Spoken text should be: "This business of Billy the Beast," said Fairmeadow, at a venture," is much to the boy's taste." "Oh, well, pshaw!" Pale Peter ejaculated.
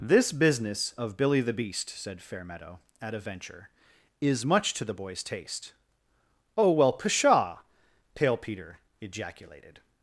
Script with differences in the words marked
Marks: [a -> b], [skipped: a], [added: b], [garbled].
"This business of Billy the Beast," said Fairmeadow, at a venture," is much to the boy's taste." "Oh, well, pshaw!" Pale Peter ejaculated.